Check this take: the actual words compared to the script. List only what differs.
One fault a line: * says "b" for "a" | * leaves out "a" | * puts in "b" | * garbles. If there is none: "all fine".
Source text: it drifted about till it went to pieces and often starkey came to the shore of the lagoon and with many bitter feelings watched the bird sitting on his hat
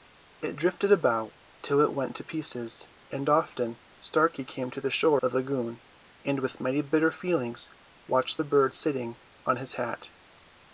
* leaves out "of"